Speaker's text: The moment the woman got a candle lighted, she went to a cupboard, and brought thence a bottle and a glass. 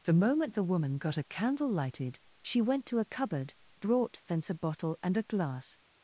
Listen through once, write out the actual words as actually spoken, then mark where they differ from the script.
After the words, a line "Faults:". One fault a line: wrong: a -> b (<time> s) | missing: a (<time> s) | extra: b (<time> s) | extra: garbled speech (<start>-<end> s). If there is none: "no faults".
The moment the woman got a candle lighted, she went to a cupboard, brought thence a bottle and a glass.
Faults:
missing: and (3.5 s)